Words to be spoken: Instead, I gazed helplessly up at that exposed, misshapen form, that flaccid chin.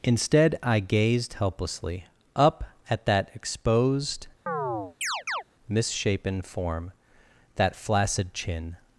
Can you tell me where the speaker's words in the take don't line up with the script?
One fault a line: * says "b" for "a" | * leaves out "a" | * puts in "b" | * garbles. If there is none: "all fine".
all fine